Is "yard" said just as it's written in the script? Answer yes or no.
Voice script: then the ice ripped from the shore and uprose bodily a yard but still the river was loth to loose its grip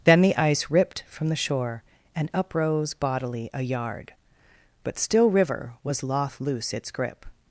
yes